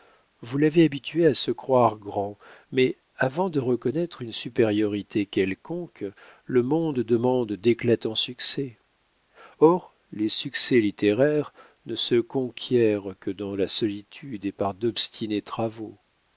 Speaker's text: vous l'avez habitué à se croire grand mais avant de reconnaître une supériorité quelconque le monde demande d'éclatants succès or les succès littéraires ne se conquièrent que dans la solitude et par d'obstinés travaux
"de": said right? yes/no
yes